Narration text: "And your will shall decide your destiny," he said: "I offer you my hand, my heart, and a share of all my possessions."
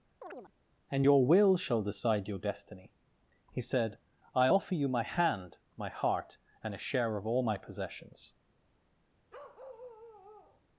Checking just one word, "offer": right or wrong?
right